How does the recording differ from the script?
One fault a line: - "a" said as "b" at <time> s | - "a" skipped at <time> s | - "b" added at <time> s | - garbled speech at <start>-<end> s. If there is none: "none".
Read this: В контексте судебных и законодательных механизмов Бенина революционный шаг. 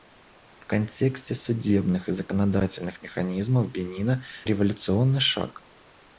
none